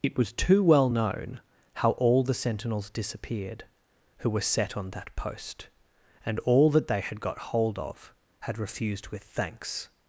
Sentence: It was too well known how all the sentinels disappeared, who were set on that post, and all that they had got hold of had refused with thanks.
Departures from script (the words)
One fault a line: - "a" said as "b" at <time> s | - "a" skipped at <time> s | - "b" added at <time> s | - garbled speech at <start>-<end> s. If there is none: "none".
none